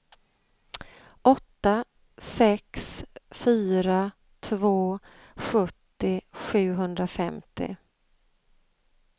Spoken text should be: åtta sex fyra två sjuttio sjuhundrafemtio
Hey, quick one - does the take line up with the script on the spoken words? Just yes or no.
yes